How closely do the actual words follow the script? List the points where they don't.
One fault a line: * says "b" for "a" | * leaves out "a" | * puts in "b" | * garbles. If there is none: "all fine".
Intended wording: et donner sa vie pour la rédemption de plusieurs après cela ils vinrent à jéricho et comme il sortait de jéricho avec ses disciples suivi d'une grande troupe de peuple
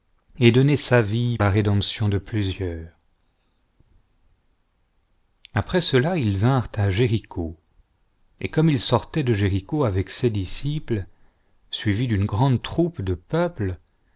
* leaves out "pour"